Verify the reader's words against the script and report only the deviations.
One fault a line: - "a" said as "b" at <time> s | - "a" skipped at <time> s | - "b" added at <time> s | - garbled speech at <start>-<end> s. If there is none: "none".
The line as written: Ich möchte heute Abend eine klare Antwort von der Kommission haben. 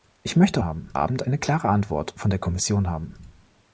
- "heute" said as "haben" at 0.6 s